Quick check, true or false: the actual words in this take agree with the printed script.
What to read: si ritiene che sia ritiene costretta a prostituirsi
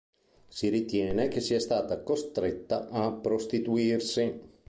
false